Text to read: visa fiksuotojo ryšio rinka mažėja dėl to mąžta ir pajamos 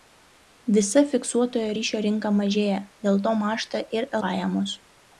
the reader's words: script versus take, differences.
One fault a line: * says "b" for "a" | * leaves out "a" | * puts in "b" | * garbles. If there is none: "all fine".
all fine